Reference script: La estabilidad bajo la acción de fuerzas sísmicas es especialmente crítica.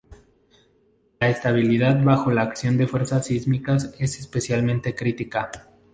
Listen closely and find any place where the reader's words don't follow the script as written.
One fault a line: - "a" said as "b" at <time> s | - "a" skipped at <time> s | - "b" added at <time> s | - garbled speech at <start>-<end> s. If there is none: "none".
none